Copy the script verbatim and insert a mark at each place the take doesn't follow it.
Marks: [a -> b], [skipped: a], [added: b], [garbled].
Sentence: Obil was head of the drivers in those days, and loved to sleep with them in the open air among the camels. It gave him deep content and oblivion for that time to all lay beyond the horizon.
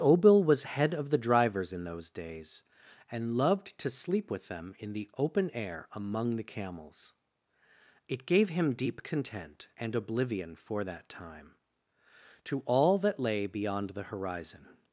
Obil was head of the drivers in those days, and loved to sleep with them in the open air among the camels. It gave him deep content and oblivion for that time to all [added: that] lay beyond the horizon.